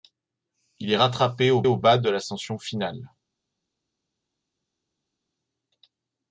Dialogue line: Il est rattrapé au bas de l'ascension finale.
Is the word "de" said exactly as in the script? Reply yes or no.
yes